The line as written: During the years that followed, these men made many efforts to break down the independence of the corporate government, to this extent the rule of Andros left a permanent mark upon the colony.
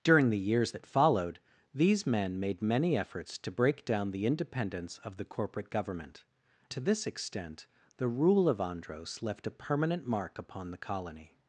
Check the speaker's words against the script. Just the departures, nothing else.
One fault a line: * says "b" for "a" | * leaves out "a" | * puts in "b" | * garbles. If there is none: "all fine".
all fine